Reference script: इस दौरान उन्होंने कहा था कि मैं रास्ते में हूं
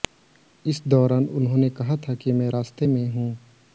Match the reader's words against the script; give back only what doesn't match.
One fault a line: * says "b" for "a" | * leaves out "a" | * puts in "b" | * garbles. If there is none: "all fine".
all fine